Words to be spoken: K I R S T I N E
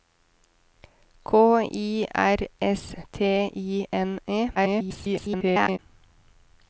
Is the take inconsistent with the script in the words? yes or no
yes